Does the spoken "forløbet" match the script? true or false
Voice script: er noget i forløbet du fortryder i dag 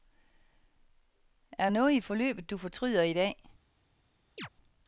true